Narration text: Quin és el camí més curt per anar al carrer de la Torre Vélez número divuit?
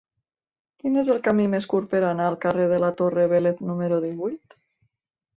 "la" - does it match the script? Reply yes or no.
yes